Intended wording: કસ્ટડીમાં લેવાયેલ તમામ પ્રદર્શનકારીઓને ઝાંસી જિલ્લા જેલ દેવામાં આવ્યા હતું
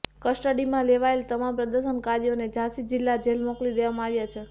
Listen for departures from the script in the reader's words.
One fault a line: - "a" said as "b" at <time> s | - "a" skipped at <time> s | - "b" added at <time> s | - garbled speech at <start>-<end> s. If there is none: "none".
- "મોકલી" added at 3.5 s
- "હતું" said as "છે" at 4.3 s